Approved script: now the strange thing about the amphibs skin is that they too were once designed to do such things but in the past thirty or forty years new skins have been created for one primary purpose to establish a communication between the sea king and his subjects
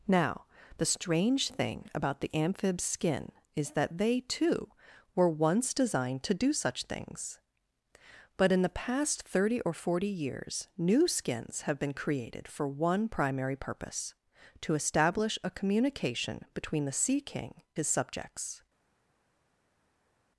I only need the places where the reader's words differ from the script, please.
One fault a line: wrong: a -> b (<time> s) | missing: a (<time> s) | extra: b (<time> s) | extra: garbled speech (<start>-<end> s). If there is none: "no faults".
missing: and (17.6 s)